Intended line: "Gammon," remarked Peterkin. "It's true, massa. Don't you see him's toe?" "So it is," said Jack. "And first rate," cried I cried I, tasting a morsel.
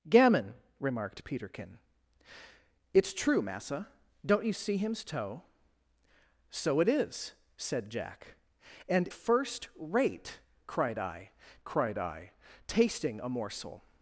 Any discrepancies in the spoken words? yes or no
no